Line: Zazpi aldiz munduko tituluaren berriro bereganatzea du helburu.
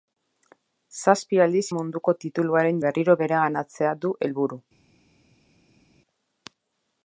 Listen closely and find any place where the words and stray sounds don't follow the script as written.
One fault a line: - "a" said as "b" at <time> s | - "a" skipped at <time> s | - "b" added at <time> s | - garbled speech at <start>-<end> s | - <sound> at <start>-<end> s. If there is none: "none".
none